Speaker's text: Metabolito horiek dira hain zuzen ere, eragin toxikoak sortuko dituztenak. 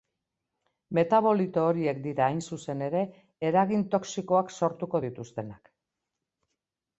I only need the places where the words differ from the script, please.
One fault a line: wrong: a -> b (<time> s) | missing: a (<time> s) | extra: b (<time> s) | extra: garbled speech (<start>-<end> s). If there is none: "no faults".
no faults